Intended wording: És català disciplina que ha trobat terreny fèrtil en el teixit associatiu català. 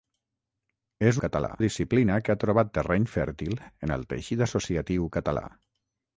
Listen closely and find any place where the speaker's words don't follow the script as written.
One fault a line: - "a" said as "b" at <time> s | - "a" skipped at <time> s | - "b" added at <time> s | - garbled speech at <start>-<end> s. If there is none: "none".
none